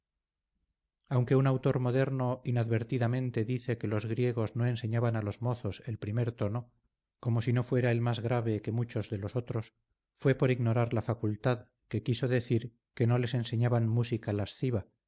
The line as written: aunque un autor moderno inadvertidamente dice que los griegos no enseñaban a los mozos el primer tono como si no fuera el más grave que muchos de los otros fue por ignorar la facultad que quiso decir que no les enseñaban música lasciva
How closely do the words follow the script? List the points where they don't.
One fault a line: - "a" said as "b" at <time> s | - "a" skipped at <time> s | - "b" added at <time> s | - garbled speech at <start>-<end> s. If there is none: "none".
none